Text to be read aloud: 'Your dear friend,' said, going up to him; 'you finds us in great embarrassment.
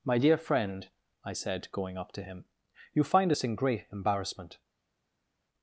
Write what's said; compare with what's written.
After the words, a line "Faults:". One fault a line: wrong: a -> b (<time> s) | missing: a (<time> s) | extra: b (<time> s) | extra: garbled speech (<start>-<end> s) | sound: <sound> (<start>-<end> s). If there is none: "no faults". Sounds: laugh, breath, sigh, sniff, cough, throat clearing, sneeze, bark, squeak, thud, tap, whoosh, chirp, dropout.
'My dear friend,' I said, going up to him; 'you find us in great embarrassment.
Faults:
wrong: Your -> My (0.0 s)
extra: I (1.2 s)
wrong: finds -> find (3.0 s)